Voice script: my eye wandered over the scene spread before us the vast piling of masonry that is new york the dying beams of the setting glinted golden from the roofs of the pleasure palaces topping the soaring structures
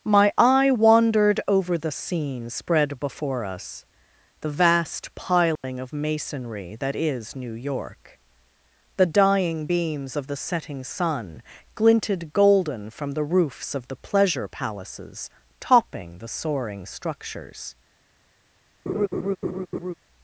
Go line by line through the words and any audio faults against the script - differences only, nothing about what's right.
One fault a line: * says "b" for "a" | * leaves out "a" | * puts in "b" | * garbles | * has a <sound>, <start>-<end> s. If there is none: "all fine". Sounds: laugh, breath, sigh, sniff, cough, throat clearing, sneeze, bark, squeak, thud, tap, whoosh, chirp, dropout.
* has a dropout, 5.6-5.6 s
* puts in "sun"
* has a laugh, 18.9-19.9 s